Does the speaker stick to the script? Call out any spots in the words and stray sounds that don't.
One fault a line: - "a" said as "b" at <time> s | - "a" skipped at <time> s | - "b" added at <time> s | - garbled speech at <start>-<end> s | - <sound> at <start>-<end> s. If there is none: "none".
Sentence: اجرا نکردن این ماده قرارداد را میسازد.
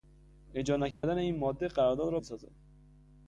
- dropout at 0.9-1.0 s